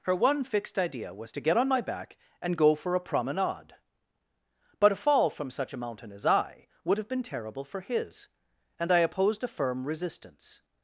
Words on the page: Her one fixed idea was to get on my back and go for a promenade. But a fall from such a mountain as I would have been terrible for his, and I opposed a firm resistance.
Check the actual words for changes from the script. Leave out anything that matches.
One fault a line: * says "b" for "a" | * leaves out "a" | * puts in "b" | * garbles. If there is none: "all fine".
all fine